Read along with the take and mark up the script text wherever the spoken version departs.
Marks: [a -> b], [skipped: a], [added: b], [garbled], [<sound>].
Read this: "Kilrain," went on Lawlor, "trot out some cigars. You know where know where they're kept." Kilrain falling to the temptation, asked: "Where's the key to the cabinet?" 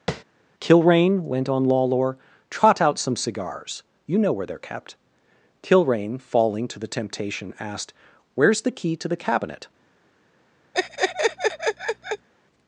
[tap] "Kilrain," went on Lawlor, "trot out some cigars. You know where [skipped: know where] they're kept." Kilrain falling to the temptation, asked: "Where's the key to the cabinet?" [laugh]